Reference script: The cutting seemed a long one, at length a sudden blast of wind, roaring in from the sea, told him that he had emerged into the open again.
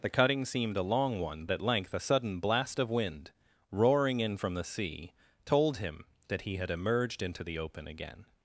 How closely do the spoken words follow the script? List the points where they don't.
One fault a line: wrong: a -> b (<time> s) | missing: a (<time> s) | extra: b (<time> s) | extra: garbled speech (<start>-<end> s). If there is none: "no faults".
no faults